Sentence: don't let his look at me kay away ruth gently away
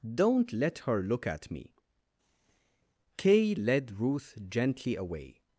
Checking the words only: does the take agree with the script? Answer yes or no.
no